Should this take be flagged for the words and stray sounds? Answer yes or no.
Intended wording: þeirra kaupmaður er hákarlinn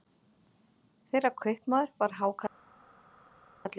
yes